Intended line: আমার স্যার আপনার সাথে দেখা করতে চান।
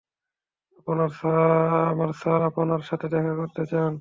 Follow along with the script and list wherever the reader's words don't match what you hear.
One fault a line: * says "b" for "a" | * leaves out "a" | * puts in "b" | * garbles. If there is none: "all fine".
all fine